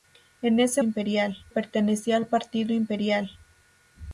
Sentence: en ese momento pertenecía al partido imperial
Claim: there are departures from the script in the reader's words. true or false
true